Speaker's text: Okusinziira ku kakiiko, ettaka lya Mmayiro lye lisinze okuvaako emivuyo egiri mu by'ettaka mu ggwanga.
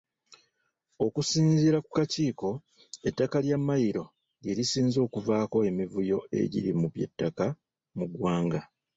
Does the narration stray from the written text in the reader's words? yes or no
no